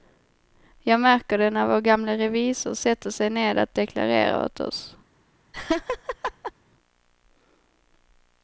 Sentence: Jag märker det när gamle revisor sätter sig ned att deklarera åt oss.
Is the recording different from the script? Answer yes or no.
yes